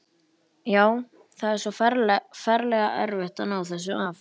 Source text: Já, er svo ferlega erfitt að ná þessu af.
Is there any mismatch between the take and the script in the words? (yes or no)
yes